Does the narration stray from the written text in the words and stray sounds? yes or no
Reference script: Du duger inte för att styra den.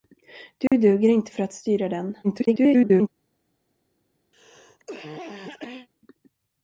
yes